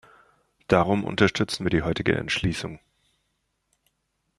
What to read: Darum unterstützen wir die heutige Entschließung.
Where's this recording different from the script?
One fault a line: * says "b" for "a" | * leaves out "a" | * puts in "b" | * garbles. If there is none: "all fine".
all fine